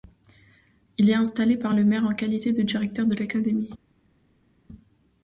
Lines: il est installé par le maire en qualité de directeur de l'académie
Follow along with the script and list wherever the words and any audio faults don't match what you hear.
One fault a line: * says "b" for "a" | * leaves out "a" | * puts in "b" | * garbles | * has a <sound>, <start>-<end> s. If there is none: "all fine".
all fine